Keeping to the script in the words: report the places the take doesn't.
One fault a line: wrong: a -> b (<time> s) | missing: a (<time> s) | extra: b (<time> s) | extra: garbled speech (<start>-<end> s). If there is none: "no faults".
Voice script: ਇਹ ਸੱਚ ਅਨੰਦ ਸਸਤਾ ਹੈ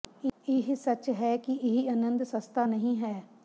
extra: ਹੈ ਕਿ ਇਹ (1.1 s)
extra: ਨਹੀਂ (2.6 s)